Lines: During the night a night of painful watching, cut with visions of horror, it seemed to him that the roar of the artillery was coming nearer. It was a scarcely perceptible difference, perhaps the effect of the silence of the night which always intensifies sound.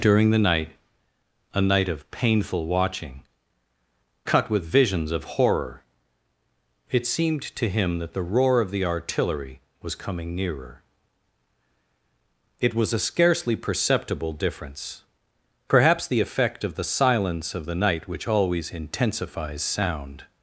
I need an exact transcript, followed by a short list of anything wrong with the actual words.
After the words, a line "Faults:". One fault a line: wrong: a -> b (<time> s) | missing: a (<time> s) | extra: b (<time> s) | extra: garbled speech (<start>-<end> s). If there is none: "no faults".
During the night a night of painful watching, cut with visions of horror, it seemed to him that the roar of the artillery was coming nearer. It was a scarcely perceptible difference, perhaps the effect of the silence of the night which always intensifies sound.
Faults:
no faults